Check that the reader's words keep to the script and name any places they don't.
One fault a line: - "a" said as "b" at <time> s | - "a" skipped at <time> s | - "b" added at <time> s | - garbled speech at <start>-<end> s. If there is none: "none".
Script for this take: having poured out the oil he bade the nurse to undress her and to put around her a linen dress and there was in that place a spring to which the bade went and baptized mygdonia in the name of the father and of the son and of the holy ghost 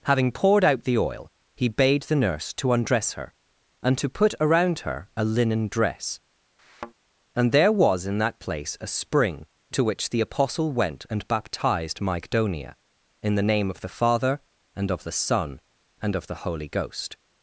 - "bade" said as "apostle" at 10.2 s